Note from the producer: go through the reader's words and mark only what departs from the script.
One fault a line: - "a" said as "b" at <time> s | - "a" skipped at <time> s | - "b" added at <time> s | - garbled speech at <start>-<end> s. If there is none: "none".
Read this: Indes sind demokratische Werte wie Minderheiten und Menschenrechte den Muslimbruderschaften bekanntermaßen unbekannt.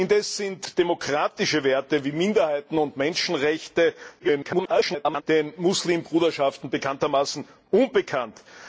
- garbled speech at 4.2-5.2 s